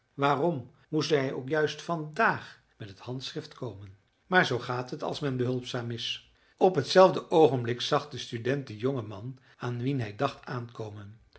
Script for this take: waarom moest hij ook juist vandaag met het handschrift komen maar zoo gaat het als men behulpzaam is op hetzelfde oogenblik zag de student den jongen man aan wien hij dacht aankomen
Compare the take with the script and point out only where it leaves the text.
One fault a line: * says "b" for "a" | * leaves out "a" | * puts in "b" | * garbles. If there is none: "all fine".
all fine